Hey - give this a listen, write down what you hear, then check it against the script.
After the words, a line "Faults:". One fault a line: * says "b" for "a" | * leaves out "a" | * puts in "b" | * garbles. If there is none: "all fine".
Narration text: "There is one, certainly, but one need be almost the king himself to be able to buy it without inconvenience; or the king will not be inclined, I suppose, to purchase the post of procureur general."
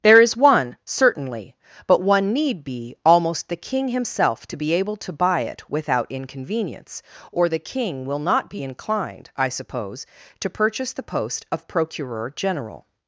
"There is one, certainly, but one need be almost the king himself to be able to buy it without inconvenience; or the king will not be inclined, I suppose, to purchase the post of procureur general."
Faults:
all fine